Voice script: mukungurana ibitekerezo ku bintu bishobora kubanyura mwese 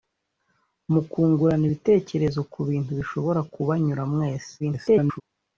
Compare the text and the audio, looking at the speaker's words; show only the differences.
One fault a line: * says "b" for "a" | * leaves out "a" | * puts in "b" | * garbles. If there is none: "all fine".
* garbles